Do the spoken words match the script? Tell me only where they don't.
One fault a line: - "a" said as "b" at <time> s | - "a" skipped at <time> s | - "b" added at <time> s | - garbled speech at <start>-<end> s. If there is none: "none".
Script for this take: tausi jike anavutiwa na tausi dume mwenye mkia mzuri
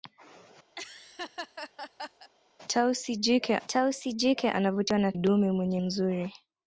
- "tausi jike" added at 3.7 s
- "tausi" skipped at 5.1 s
- "mkia" skipped at 5.8 s